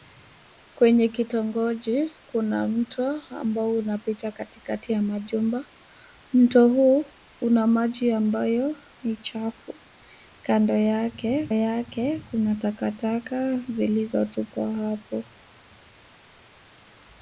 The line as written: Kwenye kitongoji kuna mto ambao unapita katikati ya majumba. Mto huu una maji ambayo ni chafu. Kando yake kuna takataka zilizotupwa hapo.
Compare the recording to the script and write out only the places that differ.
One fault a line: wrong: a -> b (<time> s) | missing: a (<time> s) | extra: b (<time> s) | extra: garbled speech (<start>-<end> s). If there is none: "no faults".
extra: yake (11.5 s)